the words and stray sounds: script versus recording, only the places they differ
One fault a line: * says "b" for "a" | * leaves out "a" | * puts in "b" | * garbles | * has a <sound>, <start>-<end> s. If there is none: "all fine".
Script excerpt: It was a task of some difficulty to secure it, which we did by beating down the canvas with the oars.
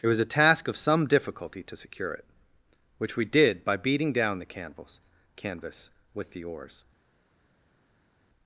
* puts in "canvas"